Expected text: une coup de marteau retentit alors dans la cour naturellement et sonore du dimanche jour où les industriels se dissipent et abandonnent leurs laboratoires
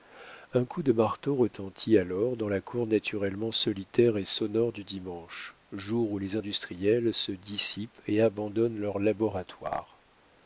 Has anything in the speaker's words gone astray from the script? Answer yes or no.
yes